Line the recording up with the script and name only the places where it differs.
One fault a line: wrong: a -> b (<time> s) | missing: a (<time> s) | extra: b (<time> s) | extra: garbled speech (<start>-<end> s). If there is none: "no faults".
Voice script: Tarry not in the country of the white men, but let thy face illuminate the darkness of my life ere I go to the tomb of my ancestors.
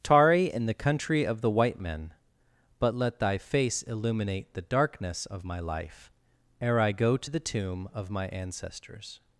missing: not (0.5 s)